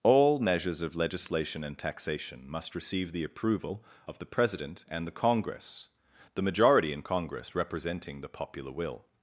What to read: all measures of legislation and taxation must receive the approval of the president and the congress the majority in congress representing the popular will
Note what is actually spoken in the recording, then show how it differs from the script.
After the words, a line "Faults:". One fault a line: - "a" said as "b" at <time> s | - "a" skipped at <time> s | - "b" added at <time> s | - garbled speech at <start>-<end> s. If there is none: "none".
all measures of legislation and taxation must receive the approval of the president and the congress the majority in congress representing the popular will
Faults:
none